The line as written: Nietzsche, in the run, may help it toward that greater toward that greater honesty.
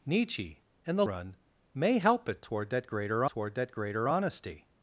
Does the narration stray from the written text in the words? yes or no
no